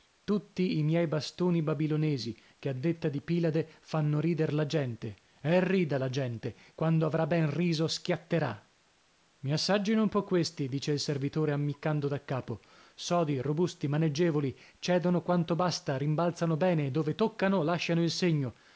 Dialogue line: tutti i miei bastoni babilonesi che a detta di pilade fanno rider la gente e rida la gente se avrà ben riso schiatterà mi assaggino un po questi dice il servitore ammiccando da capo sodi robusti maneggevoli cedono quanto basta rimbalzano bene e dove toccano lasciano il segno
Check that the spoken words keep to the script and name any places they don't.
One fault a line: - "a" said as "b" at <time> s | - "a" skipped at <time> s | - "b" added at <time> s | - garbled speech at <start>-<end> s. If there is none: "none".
- "se" said as "quando" at 6.8 s